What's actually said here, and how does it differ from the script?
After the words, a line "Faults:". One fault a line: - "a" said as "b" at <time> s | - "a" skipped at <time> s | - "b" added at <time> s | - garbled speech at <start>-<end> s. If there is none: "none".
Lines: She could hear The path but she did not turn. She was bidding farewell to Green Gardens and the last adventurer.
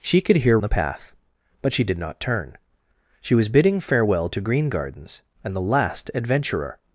She could hear The path but she did not turn. She was bidding farewell to Green Gardens and the last adventurer.
Faults:
none